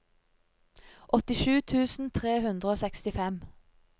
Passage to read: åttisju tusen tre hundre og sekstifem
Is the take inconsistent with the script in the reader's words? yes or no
no